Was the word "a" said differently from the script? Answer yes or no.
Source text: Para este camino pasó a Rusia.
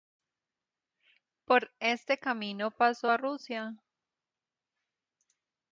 no